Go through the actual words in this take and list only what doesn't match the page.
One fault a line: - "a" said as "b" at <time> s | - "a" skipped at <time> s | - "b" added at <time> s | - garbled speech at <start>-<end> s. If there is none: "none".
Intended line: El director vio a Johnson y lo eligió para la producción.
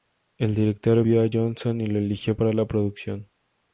none